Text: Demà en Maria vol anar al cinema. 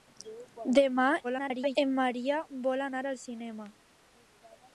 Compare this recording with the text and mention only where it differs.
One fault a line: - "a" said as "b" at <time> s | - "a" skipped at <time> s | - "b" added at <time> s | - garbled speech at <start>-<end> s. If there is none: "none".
- garbled speech at 1.2-1.8 s